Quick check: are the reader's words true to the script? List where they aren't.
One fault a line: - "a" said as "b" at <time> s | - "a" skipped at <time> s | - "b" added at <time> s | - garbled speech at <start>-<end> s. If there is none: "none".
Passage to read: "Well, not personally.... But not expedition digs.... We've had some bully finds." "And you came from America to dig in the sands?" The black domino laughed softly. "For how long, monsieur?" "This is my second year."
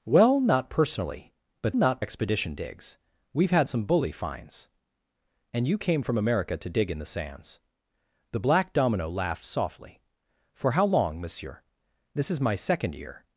none